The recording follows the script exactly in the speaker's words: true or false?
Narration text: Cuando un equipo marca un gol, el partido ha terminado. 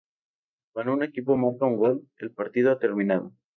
true